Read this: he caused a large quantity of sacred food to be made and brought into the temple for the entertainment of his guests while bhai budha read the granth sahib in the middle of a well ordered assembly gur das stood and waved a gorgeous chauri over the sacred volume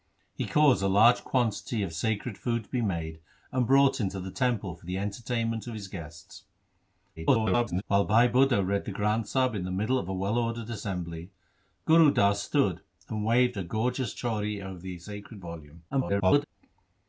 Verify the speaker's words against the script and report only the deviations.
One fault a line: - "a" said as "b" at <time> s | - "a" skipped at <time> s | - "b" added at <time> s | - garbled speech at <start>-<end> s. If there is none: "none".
- garbled speech at 7.2-7.8 s
- garbled speech at 15.9-16.4 s